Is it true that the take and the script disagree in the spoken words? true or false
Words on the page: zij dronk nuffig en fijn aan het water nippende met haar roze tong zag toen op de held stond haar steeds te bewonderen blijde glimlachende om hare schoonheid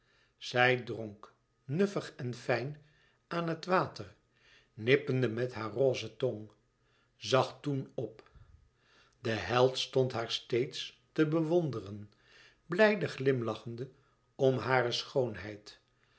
false